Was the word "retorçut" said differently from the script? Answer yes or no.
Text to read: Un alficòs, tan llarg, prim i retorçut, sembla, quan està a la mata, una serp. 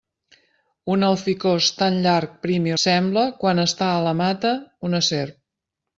yes